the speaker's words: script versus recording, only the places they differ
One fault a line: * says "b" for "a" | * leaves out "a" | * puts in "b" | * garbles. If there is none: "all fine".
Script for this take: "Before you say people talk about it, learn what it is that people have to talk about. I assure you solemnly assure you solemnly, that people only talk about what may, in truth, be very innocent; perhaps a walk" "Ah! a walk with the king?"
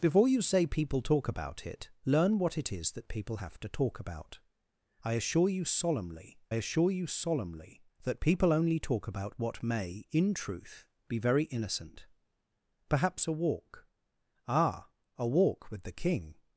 all fine